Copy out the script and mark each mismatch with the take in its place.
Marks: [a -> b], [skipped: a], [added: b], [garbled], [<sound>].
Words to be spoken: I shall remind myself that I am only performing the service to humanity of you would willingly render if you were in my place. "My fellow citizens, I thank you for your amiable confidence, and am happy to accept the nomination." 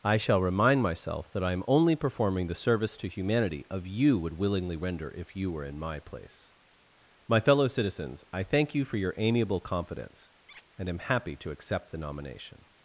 I shall remind myself that I am only performing the service to humanity of you would willingly render if you were in my place. "My fellow citizens, I thank you for your amiable confidence, [squeak] and am happy to accept the nomination."